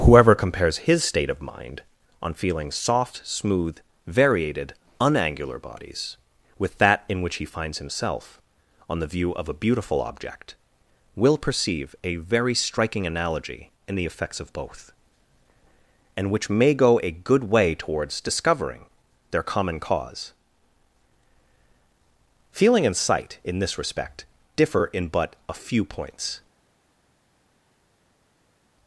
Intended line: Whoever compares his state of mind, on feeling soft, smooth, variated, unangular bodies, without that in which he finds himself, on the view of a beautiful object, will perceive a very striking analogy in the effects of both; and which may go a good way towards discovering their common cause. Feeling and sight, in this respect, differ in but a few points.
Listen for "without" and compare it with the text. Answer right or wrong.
wrong